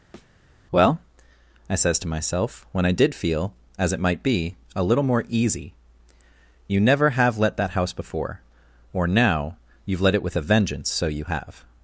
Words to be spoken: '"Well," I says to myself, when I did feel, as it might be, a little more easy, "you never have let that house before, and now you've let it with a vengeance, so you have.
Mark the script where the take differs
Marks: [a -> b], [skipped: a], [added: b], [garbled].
'"Well," I says to myself, when I did feel, as it might be, a little more easy, "you never have let that house before, [and -> or] now you've let it with a vengeance, so you have.